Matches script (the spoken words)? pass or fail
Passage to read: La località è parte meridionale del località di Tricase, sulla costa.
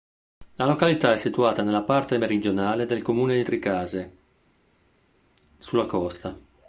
fail